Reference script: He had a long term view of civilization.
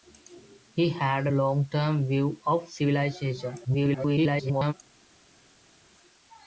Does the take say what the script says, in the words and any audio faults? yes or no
no